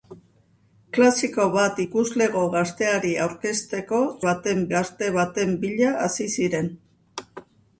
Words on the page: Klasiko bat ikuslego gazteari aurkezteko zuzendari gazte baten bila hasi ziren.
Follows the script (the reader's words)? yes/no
no